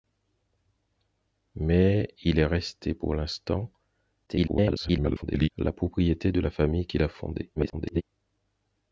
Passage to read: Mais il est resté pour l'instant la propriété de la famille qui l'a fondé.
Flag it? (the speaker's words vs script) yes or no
yes